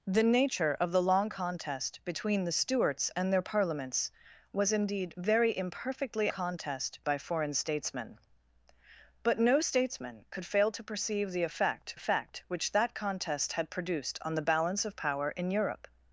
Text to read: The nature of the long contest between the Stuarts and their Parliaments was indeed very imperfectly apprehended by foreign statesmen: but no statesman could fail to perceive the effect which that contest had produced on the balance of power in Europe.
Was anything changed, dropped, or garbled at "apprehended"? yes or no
yes